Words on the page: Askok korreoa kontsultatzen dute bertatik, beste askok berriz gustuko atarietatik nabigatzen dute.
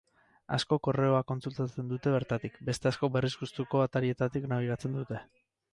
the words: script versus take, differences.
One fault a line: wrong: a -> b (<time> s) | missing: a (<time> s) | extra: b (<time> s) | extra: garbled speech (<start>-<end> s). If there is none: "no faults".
no faults